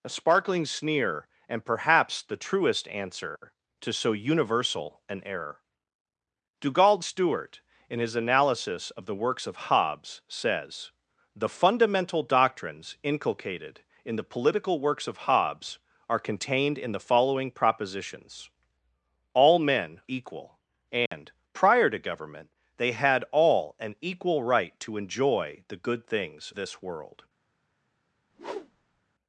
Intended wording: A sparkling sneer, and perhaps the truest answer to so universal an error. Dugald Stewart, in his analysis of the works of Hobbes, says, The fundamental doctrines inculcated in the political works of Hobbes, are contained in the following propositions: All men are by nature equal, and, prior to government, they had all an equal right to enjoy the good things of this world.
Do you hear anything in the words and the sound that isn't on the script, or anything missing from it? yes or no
yes